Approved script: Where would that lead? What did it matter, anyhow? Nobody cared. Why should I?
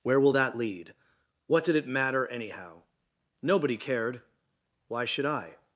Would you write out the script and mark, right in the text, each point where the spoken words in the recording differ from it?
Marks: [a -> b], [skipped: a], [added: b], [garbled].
Where [would -> will] that lead? What did it matter, anyhow? Nobody cared. Why should I?